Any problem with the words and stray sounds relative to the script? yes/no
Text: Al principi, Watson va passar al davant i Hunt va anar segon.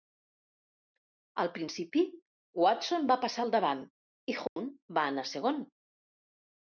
yes